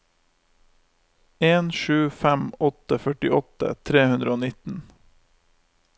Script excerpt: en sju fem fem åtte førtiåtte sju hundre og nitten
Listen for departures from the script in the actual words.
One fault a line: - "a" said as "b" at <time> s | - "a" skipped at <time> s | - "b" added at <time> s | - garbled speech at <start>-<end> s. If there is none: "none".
- "fem" skipped at 2.5 s
- "sju" said as "tre" at 3.9 s